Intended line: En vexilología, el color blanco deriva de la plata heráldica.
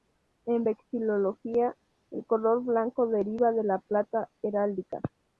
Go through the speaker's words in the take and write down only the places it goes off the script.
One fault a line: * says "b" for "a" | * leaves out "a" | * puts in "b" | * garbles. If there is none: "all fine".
all fine